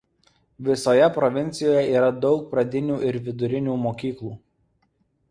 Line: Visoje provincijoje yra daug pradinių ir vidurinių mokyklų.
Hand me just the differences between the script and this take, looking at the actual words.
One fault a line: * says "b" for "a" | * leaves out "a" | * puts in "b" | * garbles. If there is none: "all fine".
all fine